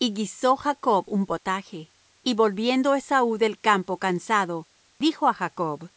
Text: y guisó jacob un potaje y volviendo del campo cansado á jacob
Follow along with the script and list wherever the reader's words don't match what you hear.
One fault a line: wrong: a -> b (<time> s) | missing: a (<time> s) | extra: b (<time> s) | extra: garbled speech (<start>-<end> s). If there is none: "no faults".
extra: esaú (2.9 s)
extra: dijo (5.0 s)